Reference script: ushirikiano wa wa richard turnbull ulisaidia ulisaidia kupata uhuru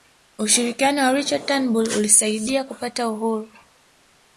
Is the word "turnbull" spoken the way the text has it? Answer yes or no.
yes